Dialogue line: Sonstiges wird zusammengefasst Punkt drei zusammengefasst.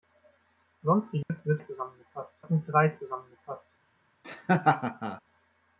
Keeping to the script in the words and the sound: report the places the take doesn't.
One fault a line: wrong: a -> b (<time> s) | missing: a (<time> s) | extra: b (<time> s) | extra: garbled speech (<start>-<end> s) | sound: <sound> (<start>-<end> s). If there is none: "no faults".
sound: dropout (1.2-1.3 s)
sound: laugh (4.2-5.2 s)